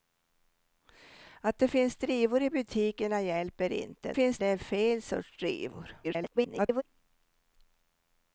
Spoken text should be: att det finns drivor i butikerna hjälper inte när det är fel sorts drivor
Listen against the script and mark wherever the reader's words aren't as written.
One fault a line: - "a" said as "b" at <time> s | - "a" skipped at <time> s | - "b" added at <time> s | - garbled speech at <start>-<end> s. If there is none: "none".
- "när" said as "finns" at 4.1 s
- garbled speech at 6.0-6.8 s